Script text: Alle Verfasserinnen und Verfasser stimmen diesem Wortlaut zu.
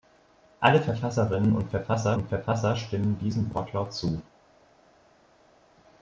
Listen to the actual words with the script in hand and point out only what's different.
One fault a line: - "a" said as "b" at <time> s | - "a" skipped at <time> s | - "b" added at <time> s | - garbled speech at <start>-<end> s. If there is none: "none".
- "und Verfasser" added at 2.1 s